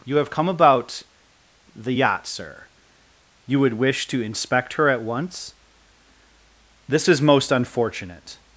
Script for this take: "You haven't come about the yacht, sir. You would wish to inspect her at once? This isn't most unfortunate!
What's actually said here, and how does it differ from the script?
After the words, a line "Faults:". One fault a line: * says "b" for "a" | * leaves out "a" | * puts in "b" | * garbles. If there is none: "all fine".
"You have come about the yacht, sir. You would wish to inspect her at once? This is most unfortunate!
Faults:
* says "have" for "haven't"
* says "is" for "isn't"